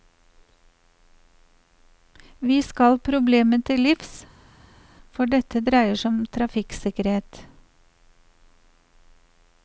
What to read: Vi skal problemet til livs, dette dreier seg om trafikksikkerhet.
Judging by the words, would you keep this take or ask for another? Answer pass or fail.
fail